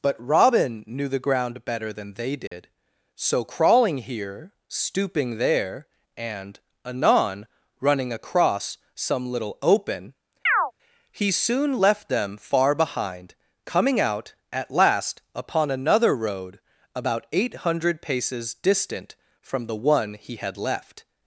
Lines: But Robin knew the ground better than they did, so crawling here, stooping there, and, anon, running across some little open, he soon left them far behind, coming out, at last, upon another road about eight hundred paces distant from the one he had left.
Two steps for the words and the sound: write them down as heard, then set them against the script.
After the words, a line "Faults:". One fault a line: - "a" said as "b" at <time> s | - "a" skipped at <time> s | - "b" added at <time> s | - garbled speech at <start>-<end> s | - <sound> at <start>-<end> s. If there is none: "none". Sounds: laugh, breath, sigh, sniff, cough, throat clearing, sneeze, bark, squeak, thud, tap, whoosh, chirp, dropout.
But Robin knew the ground better than they did, so crawling here, stooping there, and, anon, running across some little open, he soon left them far behind, coming out, at last, upon another road about eight hundred paces distant from the one he had left.
Faults:
- dropout at 2.5-2.5 s
- chirp at 10.5-10.7 s